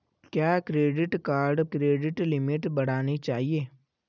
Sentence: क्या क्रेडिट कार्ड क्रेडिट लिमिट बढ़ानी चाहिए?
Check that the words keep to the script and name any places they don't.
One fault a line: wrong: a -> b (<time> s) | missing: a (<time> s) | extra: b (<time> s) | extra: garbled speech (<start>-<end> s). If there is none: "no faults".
no faults